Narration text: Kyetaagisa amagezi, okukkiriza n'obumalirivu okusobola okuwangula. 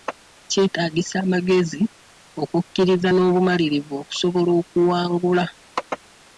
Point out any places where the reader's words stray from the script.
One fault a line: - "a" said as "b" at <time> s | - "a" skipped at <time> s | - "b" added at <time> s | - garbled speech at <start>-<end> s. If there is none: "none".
none